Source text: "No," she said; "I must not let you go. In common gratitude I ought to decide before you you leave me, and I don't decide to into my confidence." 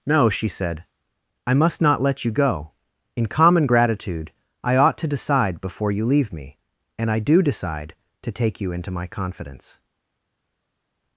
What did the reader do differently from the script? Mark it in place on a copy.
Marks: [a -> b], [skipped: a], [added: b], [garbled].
"No," she said; "I must not let you go. In common gratitude I ought to decide before you [skipped: you] leave me, and I [don't -> do] decide to [added: take you] into my confidence."